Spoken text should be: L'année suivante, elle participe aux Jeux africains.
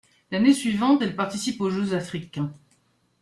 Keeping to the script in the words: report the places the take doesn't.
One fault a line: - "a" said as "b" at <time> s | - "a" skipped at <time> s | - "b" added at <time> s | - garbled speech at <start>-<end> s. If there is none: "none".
none